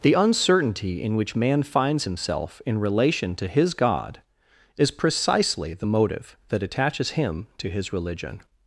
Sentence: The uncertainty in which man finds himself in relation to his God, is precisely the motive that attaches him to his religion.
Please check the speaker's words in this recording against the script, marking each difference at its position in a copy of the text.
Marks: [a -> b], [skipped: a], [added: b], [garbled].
The uncertainty in which man finds himself in relation to his God, is precisely the motive that attaches him to his religion.